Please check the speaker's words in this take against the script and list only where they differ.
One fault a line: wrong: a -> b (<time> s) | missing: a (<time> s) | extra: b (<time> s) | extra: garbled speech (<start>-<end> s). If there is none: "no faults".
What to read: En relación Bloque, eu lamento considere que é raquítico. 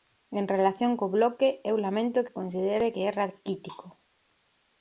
extra: co (1.0 s)
extra: que (2.2 s)